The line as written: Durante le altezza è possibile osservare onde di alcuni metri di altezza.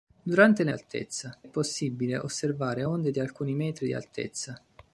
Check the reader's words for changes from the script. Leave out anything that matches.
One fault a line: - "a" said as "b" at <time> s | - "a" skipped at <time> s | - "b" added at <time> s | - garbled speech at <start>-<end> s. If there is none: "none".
none